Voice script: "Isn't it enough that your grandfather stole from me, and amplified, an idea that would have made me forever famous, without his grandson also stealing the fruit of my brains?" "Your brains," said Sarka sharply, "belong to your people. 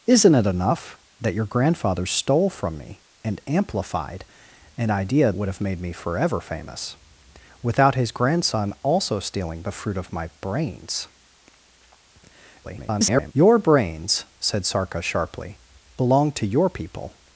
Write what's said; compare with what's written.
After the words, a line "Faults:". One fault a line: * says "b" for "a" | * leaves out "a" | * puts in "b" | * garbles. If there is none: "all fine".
"Isn't it enough that your grandfather stole from me, and amplified, an idea would have made me forever famous, without his grandson also stealing the fruit of my brains?" [garbled] "Your brains," said Sarka sharply, "belong to your people.
Faults:
* leaves out "that"
* garbles